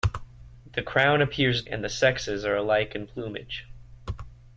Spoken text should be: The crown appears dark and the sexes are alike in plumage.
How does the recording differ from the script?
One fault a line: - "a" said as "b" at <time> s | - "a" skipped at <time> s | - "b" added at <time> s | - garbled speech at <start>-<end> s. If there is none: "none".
- "dark" skipped at 1.6 s